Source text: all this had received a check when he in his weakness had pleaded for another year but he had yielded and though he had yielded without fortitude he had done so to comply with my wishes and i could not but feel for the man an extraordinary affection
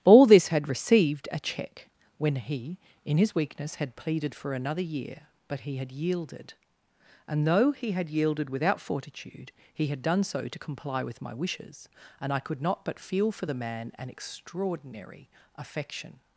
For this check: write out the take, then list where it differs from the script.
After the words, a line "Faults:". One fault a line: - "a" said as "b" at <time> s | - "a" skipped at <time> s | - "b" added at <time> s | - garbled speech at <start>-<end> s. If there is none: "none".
all this had received a check when he in his weakness had pleaded for another year but he had yielded and though he had yielded without fortitude he had done so to comply with my wishes and i could not but feel for the man an extraordinary affection
Faults:
none